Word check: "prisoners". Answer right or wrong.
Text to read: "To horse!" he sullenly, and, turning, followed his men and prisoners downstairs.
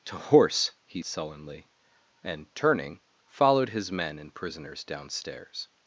right